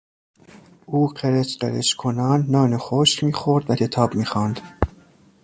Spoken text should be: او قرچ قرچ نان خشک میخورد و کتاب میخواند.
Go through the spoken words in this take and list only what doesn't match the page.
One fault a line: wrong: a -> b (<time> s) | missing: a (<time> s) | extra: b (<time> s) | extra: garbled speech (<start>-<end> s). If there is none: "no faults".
extra: کنان (1.9 s)